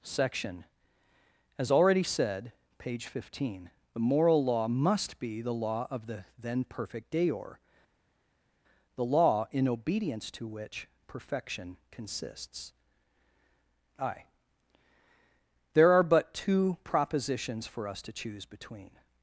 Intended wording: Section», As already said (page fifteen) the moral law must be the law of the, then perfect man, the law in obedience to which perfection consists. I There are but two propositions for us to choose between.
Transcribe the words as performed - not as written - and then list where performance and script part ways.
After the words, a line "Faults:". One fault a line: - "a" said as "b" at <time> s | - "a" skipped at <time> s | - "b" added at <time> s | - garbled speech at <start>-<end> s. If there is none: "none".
Section», As already said (page fifteen) the moral law must be the law of the, then perfect deor, the law in obedience to which perfection consists. I There are but two propositions for us to choose between.
Faults:
- "man" said as "deor" at 7.1 s